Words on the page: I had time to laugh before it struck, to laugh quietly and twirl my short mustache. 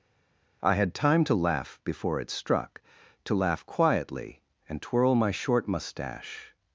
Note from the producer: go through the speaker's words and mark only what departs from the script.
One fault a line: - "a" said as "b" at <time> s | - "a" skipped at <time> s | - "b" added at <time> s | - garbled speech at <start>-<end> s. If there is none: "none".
none